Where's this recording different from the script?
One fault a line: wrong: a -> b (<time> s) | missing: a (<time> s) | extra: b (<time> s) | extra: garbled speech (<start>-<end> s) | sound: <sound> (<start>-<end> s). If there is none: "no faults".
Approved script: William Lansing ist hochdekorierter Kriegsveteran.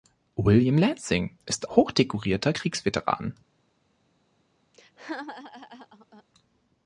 sound: laugh (4.7-6.2 s)